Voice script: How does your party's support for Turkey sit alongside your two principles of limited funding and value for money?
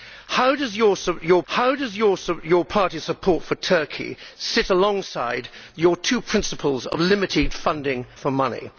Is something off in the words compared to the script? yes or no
yes